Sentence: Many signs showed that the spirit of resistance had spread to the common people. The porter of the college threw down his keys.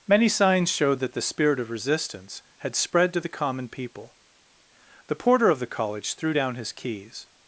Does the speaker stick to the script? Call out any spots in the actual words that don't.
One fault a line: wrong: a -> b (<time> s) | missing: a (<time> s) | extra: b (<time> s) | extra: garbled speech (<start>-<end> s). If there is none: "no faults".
no faults